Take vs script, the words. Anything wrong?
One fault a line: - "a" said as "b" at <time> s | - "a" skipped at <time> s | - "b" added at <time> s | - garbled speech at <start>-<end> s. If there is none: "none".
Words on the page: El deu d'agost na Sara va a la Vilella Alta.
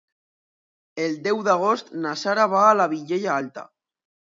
none